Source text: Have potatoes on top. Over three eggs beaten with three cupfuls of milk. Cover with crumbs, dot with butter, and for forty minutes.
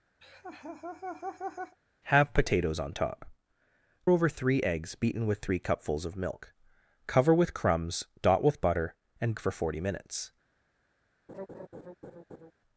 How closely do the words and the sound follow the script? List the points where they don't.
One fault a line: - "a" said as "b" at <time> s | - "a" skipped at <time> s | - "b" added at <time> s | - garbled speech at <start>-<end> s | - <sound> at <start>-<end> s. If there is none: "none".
- laugh at 0.2-1.8 s
- laugh at 11.3-12.5 s